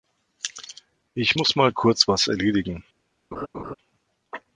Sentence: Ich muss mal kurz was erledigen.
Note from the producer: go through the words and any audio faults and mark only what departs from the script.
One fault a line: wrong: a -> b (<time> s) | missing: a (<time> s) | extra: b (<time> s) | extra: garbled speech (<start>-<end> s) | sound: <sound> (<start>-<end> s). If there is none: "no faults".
sound: laugh (3.3-3.7 s)